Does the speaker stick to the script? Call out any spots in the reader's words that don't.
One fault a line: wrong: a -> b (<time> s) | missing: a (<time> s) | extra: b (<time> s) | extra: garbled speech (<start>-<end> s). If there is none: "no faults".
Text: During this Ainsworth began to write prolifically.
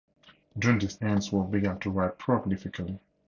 no faults